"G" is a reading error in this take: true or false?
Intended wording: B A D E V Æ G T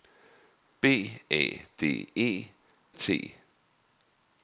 true